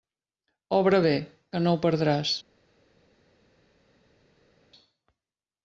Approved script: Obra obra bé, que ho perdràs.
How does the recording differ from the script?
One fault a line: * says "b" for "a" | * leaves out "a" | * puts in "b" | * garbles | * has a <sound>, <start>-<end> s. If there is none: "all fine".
* leaves out "obra"
* puts in "no"